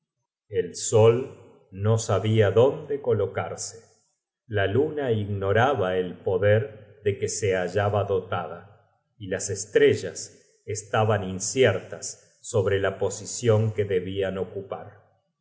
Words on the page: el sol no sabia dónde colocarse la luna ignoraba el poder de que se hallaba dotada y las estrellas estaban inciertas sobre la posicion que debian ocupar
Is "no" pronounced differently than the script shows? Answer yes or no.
no